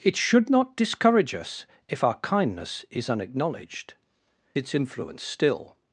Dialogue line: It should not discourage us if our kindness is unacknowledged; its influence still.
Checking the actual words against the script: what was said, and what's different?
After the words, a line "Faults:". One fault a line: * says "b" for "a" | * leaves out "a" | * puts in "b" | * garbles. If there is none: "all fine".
It should not discourage us if our kindness is unacknowledged; its influence still.
Faults:
all fine